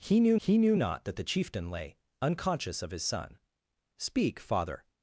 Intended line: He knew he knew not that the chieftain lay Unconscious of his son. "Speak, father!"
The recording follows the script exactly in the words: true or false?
true